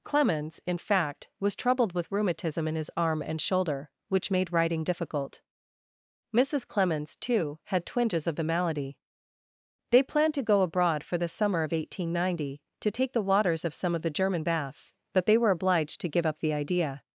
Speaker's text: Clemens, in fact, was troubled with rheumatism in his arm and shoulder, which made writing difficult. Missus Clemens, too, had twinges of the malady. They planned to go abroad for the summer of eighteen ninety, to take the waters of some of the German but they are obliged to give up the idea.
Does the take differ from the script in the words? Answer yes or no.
yes